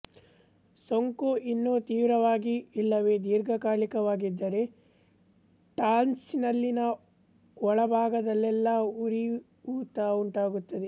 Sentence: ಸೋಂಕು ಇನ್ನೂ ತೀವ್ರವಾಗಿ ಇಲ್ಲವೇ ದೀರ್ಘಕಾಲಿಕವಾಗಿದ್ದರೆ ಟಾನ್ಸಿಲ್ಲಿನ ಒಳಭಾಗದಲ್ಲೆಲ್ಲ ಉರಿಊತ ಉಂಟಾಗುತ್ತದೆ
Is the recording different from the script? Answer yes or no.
no